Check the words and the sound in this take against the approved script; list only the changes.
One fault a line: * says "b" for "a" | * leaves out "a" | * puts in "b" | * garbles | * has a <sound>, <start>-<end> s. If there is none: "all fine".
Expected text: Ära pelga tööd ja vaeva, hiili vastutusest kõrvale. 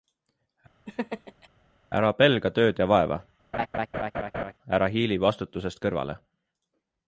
* has a laugh, 0.9-1.5 s
* has a laugh, 3.5-4.5 s
* puts in "ära"